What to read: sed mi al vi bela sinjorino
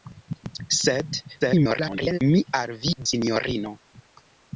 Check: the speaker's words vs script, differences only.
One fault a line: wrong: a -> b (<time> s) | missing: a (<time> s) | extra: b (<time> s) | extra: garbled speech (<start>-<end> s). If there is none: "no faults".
extra: garbled speech (1.4-2.2 s)
missing: bela (2.9 s)